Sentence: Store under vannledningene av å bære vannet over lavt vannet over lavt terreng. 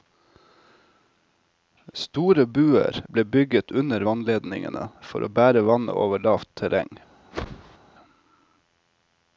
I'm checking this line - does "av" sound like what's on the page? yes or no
no